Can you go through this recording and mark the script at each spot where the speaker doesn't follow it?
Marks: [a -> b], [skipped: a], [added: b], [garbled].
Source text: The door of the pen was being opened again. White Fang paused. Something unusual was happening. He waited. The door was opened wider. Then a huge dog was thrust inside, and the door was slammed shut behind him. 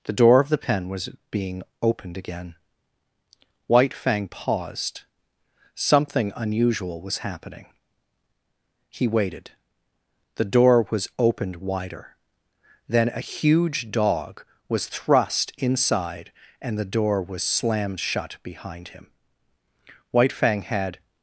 The door of the pen was being opened again. White Fang paused. Something unusual was happening. He waited. The door was opened wider. Then a huge dog was thrust inside, and the door was slammed shut behind him. [added: White Fang had]